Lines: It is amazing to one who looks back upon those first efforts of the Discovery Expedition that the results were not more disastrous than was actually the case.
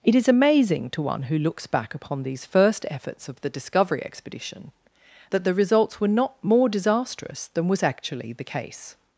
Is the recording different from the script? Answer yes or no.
yes